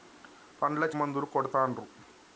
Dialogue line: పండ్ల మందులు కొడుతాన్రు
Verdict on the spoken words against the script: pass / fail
pass